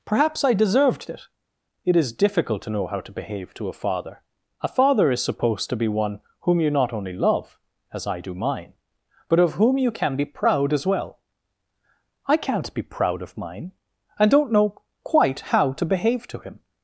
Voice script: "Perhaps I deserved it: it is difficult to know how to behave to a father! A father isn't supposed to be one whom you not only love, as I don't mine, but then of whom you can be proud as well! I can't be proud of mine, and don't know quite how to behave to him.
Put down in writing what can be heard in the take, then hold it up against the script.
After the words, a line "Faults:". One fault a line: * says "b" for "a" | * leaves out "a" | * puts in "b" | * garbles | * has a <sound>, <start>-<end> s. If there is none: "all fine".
"Perhaps I deserved it: it is difficult to know how to behave to a father! A father is supposed to be one whom you not only love, as I do mine, but of whom you can be proud as well! I can't be proud of mine, and don't know quite how to behave to him.
Faults:
* says "is" for "isn't"
* says "do" for "don't"
* leaves out "then"